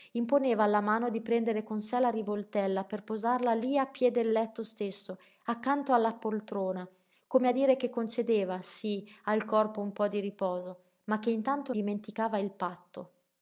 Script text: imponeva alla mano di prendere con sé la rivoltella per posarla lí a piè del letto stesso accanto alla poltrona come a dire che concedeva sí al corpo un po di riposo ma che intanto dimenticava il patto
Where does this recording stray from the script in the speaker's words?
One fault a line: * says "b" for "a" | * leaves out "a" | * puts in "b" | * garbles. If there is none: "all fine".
all fine